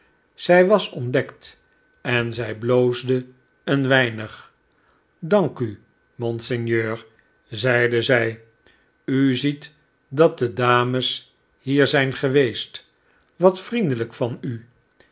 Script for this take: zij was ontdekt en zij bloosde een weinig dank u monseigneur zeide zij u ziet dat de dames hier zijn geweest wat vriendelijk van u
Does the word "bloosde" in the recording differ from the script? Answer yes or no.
no